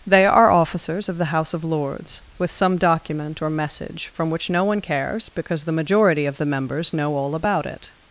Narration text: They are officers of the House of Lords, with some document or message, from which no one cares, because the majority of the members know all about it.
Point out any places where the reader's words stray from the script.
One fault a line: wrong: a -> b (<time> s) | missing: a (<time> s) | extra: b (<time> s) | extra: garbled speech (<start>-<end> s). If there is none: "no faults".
no faults